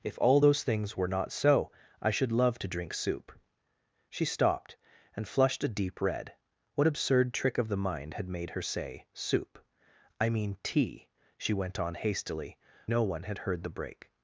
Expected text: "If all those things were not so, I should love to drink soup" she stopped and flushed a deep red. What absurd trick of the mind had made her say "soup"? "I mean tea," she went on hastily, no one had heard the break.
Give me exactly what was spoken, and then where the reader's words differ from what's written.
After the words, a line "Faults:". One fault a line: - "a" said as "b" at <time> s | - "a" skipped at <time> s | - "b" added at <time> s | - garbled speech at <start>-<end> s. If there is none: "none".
"If all those things were not so, I should love to drink soup" she stopped and flushed a deep red. What absurd trick of the mind had made her say "soup"? "I mean tea," she went on hastily, no one had heard the break.
Faults:
none